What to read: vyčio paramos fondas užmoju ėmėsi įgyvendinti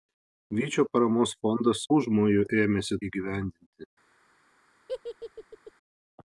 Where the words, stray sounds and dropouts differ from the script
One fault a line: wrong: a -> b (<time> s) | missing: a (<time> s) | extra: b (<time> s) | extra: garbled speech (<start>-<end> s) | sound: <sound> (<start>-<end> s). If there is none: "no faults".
sound: laugh (4.9-5.7 s)